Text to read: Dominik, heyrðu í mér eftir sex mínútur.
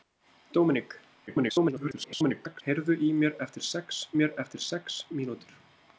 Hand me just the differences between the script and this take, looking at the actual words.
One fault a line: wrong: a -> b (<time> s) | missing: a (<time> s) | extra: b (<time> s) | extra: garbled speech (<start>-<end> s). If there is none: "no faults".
extra: garbled speech (1.3-2.6 s)
extra: mér eftir sex (4.2 s)